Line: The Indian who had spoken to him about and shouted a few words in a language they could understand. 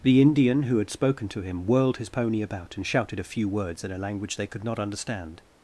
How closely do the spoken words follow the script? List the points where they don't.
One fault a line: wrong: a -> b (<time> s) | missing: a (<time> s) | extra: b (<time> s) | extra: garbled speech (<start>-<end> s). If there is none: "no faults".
extra: whirled his pony (1.7 s)
extra: not (4.6 s)